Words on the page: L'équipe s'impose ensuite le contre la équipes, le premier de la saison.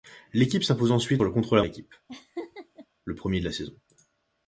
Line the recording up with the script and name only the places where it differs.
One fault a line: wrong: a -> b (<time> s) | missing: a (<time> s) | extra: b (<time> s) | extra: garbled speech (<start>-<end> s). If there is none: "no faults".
no faults